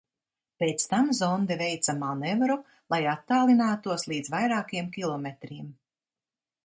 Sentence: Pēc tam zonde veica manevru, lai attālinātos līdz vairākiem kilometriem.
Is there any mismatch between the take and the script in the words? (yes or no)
no